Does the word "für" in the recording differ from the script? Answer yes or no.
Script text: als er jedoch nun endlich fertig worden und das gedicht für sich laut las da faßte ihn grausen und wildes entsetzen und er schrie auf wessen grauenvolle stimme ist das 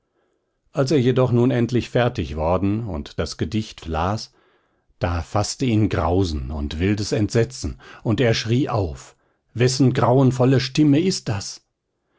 yes